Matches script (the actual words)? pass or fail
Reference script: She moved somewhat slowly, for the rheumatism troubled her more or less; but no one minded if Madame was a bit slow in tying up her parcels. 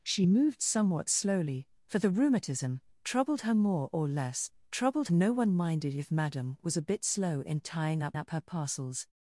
fail